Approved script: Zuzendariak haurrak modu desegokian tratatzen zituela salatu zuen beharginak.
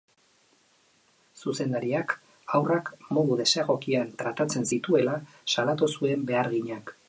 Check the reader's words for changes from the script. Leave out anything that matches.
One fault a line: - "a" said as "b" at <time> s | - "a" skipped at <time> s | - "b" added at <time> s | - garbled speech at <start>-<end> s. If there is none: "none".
none